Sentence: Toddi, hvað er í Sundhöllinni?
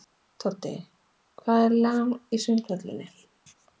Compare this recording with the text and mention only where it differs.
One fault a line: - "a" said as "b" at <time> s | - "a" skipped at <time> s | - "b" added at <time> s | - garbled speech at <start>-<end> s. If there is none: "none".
none